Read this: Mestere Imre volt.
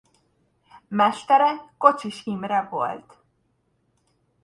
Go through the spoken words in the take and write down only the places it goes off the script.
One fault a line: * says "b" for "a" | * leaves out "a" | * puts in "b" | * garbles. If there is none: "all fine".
* puts in "Kocsis"